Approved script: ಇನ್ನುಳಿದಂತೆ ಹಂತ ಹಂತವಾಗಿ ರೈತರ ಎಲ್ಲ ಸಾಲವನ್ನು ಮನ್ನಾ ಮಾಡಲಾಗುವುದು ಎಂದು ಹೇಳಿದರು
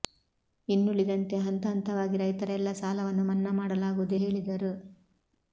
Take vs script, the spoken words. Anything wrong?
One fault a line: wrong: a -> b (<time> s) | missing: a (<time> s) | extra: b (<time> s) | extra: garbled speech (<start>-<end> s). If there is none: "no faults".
missing: ಎಂದು (4.2 s)